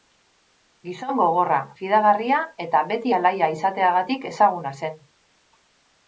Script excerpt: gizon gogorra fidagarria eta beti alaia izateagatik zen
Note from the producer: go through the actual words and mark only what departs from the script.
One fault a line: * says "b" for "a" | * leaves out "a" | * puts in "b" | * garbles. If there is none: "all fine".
* puts in "ezaguna"